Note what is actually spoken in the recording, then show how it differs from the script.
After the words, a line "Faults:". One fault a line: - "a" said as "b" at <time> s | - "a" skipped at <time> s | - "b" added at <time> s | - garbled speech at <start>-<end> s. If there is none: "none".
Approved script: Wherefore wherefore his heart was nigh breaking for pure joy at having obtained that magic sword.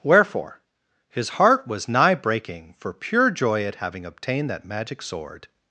Wherefore his heart was nigh breaking for pure joy at having obtained that magic sword.
Faults:
- "wherefore" skipped at 0.6 s